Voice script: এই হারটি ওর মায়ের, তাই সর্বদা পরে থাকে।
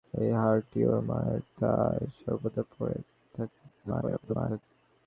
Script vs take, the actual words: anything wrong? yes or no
yes